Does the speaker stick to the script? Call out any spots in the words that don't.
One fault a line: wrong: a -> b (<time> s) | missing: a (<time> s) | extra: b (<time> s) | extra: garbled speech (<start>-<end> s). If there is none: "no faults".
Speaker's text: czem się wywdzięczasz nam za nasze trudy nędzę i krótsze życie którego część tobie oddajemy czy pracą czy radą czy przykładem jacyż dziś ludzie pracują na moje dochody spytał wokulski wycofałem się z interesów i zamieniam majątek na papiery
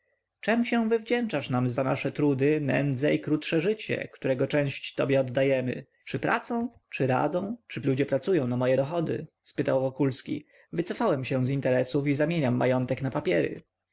missing: przykładem jacyż dziś (7.8 s)